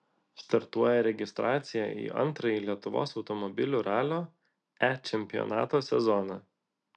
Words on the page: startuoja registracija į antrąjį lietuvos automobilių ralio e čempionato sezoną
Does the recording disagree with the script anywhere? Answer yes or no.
no